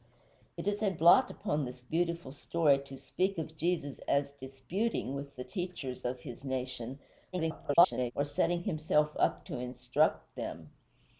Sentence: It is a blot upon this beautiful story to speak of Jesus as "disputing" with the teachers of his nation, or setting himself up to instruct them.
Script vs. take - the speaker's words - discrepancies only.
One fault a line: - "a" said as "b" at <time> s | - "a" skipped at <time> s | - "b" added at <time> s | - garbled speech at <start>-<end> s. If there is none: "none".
- garbled speech at 7.3-8.1 s